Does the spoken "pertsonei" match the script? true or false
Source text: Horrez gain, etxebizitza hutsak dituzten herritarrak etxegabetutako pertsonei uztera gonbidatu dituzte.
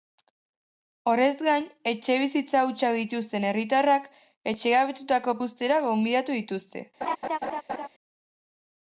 false